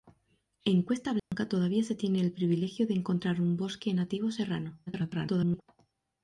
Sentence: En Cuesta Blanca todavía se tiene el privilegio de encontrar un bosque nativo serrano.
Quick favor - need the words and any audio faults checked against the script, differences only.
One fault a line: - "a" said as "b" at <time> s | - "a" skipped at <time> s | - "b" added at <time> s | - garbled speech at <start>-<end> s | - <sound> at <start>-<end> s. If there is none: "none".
- dropout at 1.2-1.3 s
- garbled speech at 4.9-5.6 s